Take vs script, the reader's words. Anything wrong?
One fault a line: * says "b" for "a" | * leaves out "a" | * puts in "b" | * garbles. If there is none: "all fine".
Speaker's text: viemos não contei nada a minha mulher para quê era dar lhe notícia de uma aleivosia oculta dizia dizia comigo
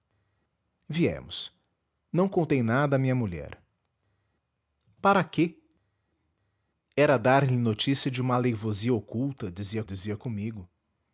all fine